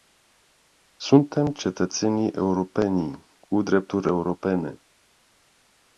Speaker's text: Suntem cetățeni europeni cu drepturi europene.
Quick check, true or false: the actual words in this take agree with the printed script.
true